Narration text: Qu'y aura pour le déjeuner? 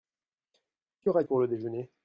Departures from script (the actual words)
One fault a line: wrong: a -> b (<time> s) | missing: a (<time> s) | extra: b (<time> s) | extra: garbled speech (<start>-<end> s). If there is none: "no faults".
no faults